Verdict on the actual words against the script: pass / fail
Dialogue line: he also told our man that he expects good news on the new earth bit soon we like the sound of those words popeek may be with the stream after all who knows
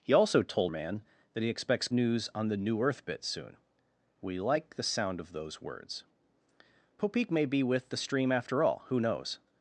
fail